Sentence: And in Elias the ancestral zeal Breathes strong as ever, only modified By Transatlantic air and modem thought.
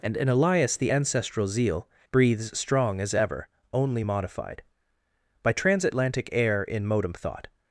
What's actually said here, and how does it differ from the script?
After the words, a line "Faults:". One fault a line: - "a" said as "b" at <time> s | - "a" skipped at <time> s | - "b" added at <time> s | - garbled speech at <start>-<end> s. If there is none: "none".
And in Elias the ancestral zeal Breathes strong as ever, only modified By Transatlantic air in modem thought.
Faults:
- "and" said as "in" at 6.6 s